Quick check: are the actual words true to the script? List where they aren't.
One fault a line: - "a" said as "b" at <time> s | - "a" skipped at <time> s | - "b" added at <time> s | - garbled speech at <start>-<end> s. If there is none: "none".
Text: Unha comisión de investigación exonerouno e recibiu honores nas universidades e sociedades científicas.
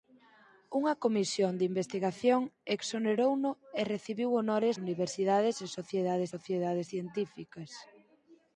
- "nas" skipped at 4.8 s
- "sociedades" added at 6.3 s